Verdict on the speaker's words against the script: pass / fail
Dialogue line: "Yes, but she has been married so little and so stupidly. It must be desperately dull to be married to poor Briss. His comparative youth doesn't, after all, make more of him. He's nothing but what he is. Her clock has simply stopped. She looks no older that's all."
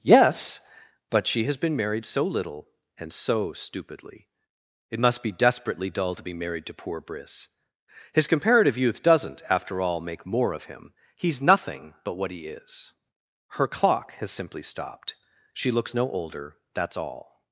pass